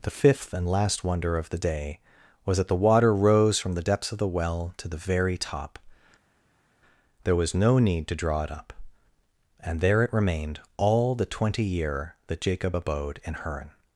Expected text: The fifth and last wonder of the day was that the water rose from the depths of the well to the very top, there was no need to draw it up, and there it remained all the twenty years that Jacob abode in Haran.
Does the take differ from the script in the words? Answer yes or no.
yes